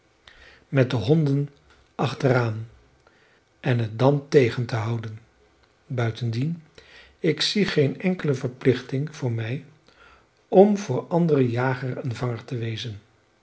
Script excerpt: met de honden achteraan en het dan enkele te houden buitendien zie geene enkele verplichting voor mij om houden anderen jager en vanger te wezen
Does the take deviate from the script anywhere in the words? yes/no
yes